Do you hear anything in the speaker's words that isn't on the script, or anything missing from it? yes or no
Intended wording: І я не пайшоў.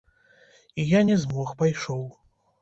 yes